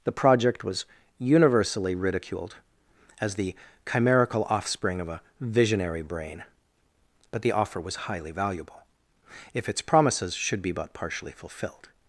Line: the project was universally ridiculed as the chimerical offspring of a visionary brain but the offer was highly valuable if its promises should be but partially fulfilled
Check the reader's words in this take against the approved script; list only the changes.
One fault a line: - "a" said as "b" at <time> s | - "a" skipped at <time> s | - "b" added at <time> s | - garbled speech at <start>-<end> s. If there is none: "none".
none